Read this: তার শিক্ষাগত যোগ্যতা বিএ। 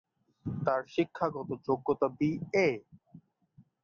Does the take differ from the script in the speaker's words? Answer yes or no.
no